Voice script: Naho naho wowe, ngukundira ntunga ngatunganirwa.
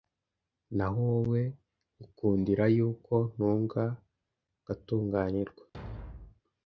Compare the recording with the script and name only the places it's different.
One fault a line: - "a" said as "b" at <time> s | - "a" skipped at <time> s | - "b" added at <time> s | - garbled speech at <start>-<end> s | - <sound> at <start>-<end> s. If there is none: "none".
- "naho" skipped at 1.0 s
- "yuko" added at 2.8 s
- thud at 5.7-6.4 s